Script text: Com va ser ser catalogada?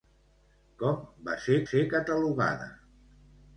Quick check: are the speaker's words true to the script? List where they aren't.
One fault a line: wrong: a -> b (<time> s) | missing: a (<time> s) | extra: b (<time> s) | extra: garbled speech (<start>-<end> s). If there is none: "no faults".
no faults